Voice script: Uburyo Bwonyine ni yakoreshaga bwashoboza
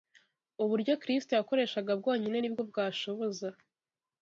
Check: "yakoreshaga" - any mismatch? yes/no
yes